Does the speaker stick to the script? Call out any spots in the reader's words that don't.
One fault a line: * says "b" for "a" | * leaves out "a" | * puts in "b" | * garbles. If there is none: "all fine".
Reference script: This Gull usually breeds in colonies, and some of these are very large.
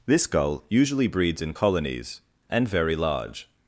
* leaves out "some of these are"